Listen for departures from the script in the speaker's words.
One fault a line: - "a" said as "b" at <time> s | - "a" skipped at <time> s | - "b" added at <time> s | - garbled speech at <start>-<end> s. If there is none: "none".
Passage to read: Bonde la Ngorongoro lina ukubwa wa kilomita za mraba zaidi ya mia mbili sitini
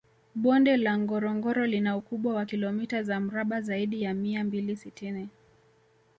none